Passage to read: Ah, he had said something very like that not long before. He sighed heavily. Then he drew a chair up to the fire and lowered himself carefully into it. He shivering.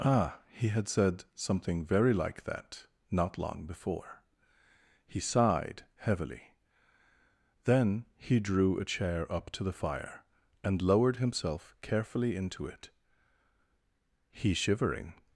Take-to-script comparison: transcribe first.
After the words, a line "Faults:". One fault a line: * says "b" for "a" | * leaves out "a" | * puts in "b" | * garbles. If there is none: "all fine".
Ah, he had said something very like that not long before. He sighed heavily. Then he drew a chair up to the fire and lowered himself carefully into it. He shivering.
Faults:
all fine